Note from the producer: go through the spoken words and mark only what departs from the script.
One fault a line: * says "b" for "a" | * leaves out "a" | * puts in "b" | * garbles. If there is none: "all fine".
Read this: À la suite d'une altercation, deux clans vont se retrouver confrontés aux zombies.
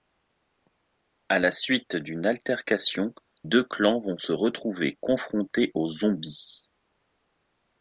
all fine